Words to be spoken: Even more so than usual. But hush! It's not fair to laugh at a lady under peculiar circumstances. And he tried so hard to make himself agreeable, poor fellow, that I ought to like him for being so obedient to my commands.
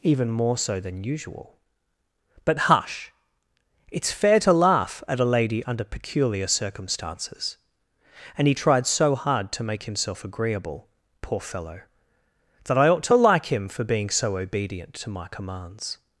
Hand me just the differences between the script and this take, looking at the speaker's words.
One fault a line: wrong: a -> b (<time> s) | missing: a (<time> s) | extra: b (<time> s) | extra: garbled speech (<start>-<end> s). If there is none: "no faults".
missing: not (4.1 s)